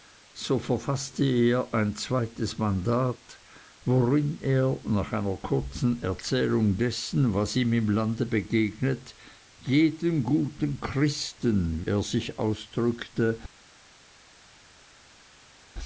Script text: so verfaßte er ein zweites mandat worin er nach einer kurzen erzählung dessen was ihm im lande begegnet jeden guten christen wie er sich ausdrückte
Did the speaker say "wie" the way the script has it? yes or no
no